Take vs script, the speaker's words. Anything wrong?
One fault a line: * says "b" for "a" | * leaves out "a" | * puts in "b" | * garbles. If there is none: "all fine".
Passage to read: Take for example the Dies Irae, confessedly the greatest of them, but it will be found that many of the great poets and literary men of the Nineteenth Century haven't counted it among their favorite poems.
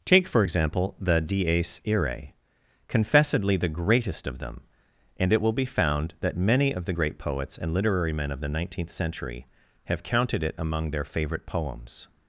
* says "and" for "but"
* says "have" for "haven't"